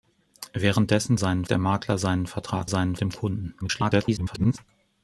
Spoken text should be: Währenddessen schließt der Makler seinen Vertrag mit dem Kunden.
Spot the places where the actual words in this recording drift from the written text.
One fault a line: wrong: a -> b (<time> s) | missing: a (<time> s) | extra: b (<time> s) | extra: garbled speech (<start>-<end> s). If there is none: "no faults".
wrong: schließt -> seinen (1.1 s)
wrong: mit -> seinen (2.7 s)
extra: garbled speech (3.6-4.6 s)